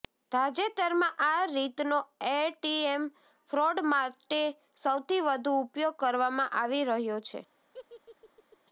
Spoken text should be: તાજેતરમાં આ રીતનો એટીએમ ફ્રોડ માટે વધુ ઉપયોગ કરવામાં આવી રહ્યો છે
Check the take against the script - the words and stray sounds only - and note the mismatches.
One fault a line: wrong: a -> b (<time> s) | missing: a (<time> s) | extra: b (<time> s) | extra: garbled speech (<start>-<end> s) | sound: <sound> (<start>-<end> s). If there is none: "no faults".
extra: સૌથી (4.8 s)
sound: laugh (7.7-8.6 s)